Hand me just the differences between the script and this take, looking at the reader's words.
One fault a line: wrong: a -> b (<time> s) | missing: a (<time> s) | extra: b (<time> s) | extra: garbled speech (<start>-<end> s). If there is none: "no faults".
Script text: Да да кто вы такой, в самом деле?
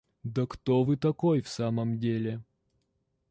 missing: да (0.5 s)